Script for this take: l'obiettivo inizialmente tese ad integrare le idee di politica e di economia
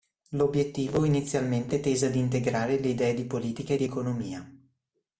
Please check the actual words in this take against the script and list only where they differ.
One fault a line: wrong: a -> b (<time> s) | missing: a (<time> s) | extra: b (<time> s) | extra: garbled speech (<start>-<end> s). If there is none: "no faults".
no faults